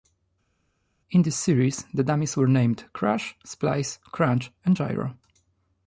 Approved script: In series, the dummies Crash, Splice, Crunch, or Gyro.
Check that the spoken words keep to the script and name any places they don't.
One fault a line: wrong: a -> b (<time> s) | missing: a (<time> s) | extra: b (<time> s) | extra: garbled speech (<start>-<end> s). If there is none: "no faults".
extra: this (1.2 s)
extra: were named (2.4 s)
wrong: or -> and (4.6 s)